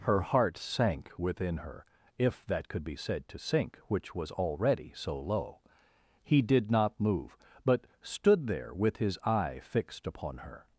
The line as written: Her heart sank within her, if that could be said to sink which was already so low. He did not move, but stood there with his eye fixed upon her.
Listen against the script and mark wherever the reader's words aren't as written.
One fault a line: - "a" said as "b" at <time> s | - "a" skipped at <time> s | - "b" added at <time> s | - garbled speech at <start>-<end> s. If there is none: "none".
none